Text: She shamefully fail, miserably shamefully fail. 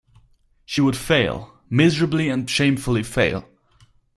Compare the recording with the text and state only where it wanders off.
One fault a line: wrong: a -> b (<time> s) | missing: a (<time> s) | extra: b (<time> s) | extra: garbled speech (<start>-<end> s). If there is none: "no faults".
wrong: shamefully -> would (0.8 s)
extra: and (2.3 s)